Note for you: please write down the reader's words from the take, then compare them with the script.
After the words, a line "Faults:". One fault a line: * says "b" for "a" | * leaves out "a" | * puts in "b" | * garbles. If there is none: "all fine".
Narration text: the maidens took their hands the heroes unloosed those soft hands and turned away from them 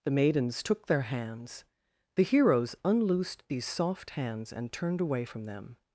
the maidens took their hands the heroes unloosed these soft hands and turned away from them
Faults:
* says "these" for "those"